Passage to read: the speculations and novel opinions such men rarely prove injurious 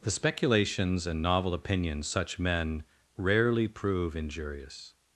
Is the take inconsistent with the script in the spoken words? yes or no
no